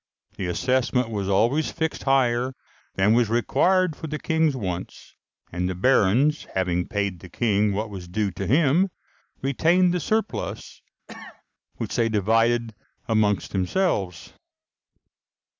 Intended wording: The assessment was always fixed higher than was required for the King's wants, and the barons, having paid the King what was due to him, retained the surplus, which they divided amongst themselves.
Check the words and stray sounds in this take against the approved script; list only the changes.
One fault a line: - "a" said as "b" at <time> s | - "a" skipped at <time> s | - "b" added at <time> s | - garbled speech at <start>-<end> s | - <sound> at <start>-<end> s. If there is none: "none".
- cough at 11.1-11.4 s